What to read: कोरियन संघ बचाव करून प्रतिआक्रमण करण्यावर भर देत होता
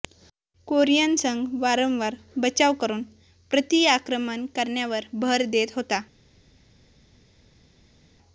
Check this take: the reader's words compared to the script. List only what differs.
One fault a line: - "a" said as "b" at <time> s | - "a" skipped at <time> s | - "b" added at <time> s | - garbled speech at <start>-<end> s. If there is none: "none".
- "वारंवार" added at 1.6 s